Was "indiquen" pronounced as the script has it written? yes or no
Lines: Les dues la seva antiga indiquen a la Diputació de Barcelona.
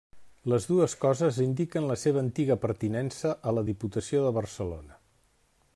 no